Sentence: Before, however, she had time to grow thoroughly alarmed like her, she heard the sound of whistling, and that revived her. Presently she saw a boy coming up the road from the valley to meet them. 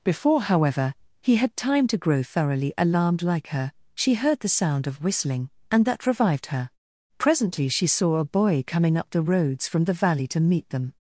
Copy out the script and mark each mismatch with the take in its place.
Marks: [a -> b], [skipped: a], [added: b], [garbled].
Before, however, [she -> he] had time to grow thoroughly alarmed like her, she heard the sound of whistling, and that revived her. Presently she saw a boy coming up the [road -> roads] from the valley to meet them.